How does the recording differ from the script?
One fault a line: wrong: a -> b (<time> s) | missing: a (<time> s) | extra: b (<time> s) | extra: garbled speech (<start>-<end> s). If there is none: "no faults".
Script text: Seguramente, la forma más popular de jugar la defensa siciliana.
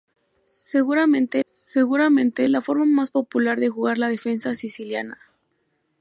extra: seguramente (1.5 s)